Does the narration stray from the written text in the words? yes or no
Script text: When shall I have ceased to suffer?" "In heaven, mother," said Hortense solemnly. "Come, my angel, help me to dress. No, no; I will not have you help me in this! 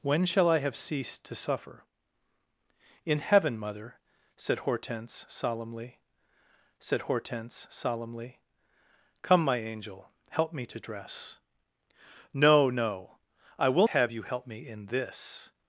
yes